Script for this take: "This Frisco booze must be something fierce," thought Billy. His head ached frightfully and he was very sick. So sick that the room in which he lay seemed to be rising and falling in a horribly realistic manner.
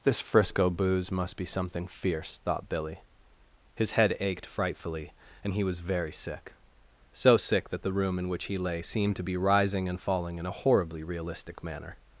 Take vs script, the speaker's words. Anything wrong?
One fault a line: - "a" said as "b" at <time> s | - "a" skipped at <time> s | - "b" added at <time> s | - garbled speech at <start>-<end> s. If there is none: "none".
none